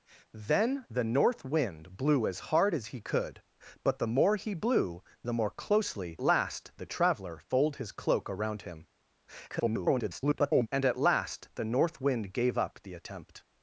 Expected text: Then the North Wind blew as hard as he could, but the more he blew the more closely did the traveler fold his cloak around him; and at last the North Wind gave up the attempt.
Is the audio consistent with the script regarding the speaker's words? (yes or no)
no